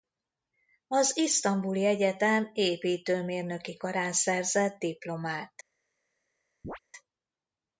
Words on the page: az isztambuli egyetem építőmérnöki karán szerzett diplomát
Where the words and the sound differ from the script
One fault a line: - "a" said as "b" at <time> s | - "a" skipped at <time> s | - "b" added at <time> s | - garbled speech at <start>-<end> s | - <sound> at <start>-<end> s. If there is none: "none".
- chirp at 6.6-6.8 s